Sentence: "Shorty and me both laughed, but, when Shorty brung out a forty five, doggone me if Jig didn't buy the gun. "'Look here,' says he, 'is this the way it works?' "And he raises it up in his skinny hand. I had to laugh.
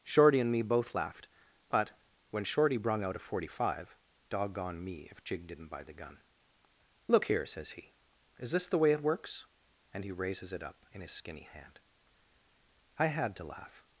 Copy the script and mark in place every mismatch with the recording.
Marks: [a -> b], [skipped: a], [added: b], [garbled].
"Shorty and me both laughed, but, when Shorty brung out a forty five, doggone me if Jig didn't buy the gun. "'Look here,' says he, 'is this the way it works?' "And he raises it up in his skinny hand. I had to laugh.